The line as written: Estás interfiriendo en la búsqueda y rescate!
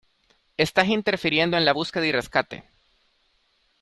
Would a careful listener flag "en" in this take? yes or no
no